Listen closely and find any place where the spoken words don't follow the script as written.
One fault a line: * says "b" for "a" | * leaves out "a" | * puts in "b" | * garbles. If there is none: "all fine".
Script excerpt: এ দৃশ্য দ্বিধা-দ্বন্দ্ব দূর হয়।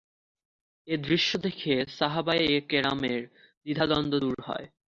* puts in "দেখে সাহাবায়ে কেরামের"